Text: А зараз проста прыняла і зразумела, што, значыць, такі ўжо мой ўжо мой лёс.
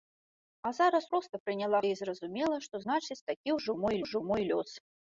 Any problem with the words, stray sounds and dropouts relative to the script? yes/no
no